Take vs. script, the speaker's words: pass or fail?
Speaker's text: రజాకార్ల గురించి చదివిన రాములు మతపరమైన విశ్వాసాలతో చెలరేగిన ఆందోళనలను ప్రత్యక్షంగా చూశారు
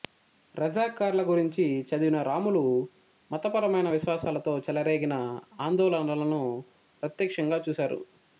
pass